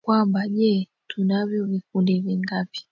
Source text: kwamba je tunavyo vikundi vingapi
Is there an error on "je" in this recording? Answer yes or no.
no